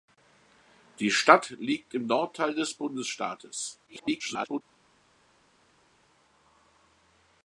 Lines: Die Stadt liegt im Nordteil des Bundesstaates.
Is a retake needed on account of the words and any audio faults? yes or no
yes